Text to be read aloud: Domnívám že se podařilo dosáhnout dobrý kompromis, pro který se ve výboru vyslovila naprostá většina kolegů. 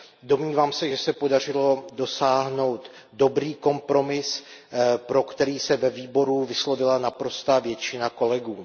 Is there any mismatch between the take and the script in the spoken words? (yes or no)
yes